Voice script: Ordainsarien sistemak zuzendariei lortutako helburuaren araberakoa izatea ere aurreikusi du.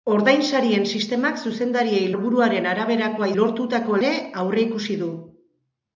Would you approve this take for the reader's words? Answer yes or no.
no